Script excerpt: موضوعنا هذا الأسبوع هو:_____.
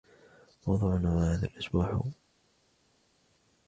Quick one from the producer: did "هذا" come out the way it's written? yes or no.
yes